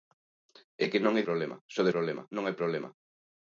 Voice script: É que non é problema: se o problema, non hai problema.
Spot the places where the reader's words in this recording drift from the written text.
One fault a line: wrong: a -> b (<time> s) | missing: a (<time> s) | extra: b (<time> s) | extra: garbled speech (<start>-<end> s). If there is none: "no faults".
no faults